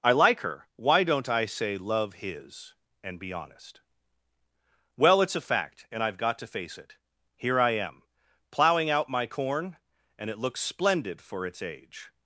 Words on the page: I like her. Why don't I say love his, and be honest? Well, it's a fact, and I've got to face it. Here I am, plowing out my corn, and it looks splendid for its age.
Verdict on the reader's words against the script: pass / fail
pass